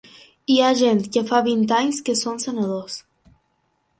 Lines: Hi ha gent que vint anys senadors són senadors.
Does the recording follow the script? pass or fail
fail